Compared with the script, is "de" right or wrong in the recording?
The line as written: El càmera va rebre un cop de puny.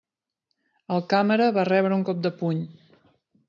right